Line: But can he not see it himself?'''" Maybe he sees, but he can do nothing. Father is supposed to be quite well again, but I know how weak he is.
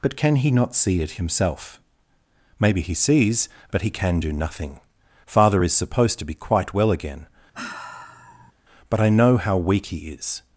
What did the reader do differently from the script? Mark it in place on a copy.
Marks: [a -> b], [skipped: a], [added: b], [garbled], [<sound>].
But can he not see it himself?'''" Maybe he sees, but he can do nothing. Father is supposed to be quite well again, [sigh] but I know how weak he is.